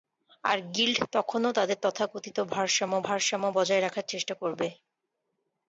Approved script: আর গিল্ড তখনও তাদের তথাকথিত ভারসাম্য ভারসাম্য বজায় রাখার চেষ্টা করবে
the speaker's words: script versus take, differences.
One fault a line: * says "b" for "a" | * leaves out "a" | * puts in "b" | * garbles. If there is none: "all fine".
all fine